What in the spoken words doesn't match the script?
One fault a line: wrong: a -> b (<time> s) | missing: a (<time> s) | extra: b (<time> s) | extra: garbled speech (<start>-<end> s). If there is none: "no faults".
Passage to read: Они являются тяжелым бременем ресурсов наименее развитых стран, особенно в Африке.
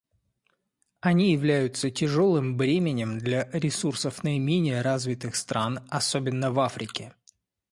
extra: для (3.2 s)